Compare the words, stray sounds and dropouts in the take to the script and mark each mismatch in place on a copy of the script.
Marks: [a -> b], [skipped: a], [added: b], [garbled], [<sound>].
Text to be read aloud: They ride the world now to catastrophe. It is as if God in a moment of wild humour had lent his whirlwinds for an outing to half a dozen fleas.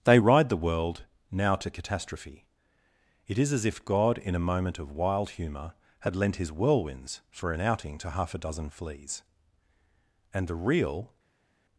They ride the world now to catastrophe. It is as if God in a moment of wild humour had lent his whirlwinds for an outing to half a dozen fleas. [added: And the real]